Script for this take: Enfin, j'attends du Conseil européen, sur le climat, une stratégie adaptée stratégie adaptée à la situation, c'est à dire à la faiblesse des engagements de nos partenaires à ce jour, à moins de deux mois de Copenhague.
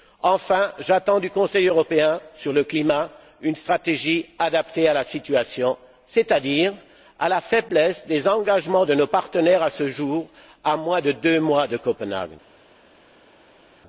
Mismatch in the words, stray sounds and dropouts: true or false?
true